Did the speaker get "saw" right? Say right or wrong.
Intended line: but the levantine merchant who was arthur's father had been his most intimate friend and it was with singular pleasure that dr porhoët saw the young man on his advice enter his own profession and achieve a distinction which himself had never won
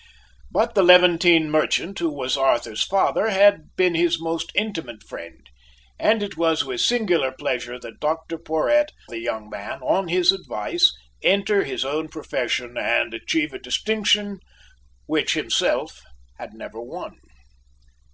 wrong